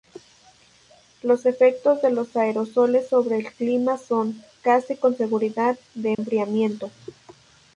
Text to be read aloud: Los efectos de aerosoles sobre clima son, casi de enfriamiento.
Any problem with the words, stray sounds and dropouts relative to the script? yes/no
yes